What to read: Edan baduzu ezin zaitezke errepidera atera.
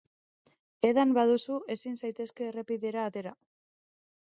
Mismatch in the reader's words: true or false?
false